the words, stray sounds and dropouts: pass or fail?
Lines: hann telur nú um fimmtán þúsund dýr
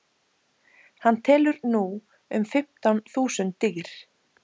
pass